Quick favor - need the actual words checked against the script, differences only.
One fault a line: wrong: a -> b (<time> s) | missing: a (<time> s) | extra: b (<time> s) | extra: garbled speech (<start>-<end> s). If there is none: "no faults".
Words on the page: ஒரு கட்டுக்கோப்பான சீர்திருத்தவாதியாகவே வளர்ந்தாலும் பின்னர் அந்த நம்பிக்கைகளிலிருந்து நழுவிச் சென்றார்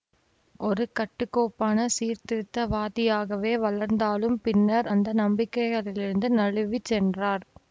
no faults